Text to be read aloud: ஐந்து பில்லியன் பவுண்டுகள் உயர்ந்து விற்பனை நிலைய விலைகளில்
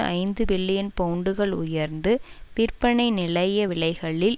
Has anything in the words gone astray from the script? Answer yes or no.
no